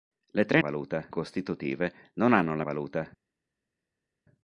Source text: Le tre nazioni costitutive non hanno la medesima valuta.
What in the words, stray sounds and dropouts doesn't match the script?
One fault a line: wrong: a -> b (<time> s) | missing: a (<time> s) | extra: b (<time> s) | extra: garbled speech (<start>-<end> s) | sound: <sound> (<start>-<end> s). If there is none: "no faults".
wrong: nazioni -> valuta (0.6 s)
missing: medesima (2.6 s)